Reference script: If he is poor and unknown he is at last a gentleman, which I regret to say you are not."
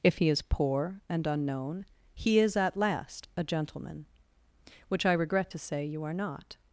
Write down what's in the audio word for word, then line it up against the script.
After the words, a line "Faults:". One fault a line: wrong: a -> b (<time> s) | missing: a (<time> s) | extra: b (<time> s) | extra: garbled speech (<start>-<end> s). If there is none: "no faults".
If he is poor and unknown he is at last a gentleman, which I regret to say you are not."
Faults:
no faults